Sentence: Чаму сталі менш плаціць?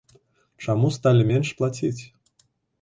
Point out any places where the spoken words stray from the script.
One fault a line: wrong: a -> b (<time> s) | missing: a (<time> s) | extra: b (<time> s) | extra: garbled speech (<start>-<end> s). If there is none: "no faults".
no faults